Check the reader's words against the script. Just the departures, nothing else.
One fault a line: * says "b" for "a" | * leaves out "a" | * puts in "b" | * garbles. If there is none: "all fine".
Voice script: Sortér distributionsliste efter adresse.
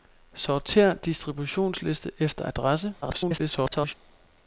* garbles